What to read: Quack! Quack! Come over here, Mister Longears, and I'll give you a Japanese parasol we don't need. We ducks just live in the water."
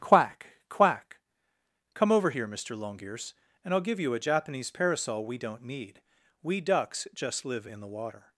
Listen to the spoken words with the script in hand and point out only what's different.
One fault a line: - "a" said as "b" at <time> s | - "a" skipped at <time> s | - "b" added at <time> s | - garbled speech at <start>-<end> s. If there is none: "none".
none